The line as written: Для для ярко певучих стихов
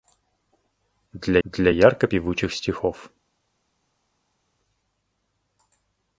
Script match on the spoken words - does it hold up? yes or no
yes